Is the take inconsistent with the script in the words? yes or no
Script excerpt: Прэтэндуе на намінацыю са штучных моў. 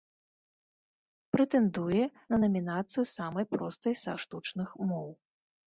yes